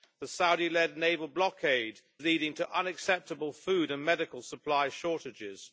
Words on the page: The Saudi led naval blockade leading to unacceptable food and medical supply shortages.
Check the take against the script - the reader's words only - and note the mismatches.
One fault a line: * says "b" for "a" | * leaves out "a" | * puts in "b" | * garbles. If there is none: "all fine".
all fine